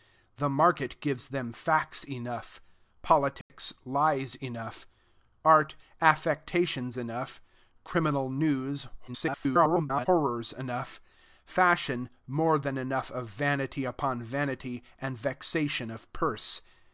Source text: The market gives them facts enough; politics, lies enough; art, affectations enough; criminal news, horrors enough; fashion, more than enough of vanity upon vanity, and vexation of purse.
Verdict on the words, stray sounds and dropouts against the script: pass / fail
fail